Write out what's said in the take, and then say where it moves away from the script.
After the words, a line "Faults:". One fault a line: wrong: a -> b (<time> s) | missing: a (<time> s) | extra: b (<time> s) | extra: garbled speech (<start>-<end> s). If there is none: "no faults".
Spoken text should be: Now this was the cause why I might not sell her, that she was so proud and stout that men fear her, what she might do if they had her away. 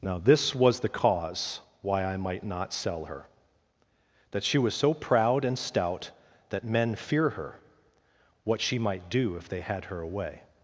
Now this was the cause why I might not sell her, that she was so proud and stout that men fear her, what she might do if they had her away.
Faults:
no faults